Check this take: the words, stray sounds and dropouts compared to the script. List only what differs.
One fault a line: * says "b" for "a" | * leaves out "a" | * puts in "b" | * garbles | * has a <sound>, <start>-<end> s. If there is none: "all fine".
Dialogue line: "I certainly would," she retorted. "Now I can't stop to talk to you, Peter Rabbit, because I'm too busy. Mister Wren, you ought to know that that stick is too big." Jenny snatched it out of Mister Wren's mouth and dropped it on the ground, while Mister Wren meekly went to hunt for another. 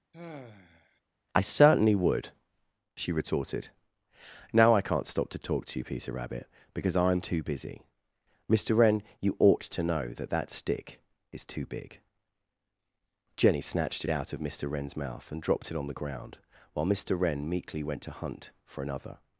* has a sigh, 0.1-1.0 s